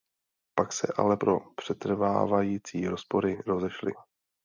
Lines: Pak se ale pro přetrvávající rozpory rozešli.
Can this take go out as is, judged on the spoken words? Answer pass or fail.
pass